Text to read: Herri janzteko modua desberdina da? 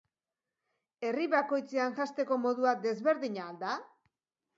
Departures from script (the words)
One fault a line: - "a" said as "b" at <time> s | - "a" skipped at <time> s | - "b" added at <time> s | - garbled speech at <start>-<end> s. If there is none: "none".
- "bakoitzean" added at 1.3 s
- "al" added at 3.5 s